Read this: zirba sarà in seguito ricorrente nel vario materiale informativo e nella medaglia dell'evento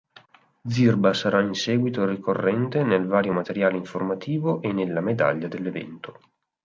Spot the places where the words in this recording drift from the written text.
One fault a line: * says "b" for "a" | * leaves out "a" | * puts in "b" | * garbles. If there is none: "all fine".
all fine